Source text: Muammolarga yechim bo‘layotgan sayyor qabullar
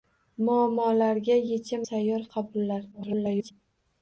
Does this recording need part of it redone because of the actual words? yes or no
yes